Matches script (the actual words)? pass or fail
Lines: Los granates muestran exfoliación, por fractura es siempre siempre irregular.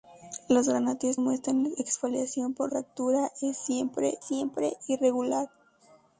pass